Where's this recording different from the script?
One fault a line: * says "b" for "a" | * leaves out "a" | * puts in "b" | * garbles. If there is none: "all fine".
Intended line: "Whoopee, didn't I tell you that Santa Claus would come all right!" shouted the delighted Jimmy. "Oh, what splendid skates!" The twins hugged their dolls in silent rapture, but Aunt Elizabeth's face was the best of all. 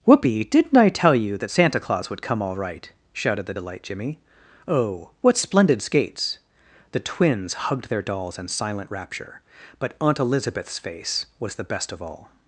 * says "delight" for "delighted"